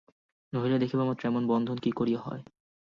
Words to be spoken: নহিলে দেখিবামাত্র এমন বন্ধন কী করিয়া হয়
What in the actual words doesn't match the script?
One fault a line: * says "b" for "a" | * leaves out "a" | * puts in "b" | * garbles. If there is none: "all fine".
all fine